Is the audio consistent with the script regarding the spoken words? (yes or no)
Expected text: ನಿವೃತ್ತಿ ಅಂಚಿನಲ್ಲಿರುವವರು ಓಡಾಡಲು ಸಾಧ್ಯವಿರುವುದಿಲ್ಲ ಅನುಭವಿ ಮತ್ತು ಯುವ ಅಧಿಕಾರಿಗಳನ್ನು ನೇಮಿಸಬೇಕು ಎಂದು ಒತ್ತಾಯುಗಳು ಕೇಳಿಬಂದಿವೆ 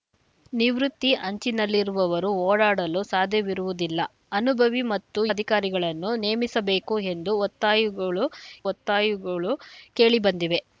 no